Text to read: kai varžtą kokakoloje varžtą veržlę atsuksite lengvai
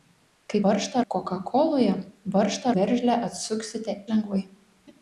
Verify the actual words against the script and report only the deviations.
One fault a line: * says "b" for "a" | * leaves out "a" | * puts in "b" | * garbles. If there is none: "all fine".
all fine